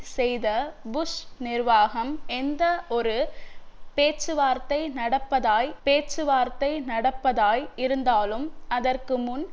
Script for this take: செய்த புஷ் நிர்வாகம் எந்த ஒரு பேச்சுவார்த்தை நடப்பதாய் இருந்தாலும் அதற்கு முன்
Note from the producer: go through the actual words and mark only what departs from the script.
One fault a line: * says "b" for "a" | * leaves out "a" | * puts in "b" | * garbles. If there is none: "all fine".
* puts in "பேச்சுவார்த்தை நடப்பதாய்"